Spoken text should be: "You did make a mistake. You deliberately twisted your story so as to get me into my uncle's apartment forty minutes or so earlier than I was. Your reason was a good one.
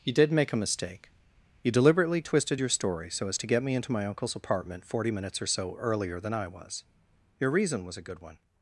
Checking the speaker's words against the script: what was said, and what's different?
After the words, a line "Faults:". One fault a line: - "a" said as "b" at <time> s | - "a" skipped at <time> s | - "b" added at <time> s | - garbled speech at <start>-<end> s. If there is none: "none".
"You did make a mistake. You deliberately twisted your story so as to get me into my uncle's apartment forty minutes or so earlier than I was. Your reason was a good one.
Faults:
none